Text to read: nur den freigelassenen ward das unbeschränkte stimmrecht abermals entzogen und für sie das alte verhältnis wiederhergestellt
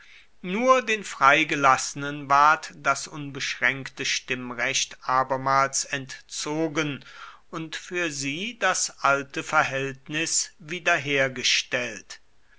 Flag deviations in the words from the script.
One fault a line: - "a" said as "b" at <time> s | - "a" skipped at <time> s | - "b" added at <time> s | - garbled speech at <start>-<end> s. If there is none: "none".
none